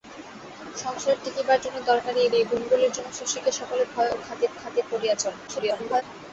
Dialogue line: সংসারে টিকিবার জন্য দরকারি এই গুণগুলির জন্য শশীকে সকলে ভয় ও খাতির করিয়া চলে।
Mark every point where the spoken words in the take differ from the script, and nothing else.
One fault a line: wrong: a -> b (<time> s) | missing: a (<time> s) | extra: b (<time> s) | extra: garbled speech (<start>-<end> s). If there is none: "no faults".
extra: এই (2.4 s)
extra: খাতির (4.6 s)
extra: garbled speech (5.5-6.0 s)